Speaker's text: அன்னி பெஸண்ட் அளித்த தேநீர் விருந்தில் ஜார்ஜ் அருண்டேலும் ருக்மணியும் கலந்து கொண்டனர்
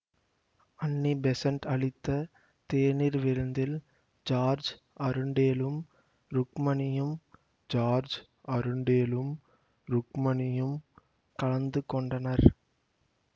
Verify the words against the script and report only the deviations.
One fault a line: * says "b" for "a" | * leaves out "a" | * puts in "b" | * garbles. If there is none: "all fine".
* puts in "ஜார்ஜ் அருண்டேலும் ருக்மணியும்"